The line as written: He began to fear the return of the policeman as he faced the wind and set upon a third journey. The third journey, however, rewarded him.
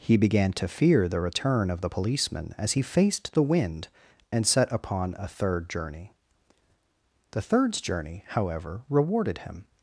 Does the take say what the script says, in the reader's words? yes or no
no